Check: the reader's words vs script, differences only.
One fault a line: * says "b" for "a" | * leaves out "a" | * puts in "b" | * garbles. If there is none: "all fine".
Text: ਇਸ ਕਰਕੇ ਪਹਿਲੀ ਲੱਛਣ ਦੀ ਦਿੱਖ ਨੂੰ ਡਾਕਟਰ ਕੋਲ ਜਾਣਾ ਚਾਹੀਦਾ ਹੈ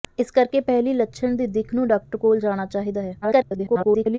* garbles